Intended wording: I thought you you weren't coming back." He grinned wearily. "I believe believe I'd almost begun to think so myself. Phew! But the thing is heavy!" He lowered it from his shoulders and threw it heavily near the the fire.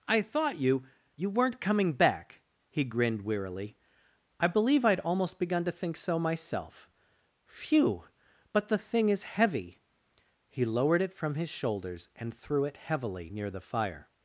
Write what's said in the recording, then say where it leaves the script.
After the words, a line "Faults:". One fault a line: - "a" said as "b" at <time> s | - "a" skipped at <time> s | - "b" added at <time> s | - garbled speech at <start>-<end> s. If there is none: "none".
I thought you you weren't coming back." He grinned wearily. "I believe I'd almost begun to think so myself. Phew! But the thing is heavy!" He lowered it from his shoulders and threw it heavily near the fire.
Faults:
- "believe" skipped at 4.9 s
- "the" skipped at 13.6 s